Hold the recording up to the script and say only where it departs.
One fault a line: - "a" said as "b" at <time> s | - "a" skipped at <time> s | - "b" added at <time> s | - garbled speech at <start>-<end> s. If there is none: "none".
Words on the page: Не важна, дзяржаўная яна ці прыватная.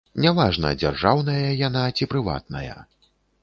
none